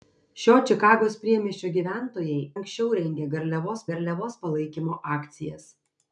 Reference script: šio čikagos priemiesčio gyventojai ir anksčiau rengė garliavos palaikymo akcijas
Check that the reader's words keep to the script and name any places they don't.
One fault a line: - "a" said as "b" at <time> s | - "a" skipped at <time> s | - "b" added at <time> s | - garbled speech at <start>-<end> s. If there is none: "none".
- "ir" skipped at 2.4 s
- "garliavos" added at 3.9 s